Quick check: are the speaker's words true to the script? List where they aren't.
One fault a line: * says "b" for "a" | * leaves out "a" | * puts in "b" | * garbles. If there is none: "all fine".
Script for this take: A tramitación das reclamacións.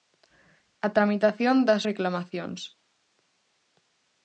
all fine